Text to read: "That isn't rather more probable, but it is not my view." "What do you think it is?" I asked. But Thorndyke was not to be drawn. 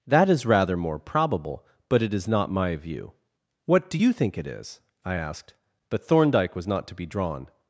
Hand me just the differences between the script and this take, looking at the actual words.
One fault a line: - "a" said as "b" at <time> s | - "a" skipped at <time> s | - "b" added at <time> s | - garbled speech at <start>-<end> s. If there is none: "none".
- "isn't" said as "is" at 0.3 s